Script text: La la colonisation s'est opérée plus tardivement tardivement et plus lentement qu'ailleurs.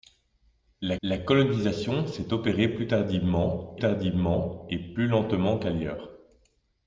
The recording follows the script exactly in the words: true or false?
true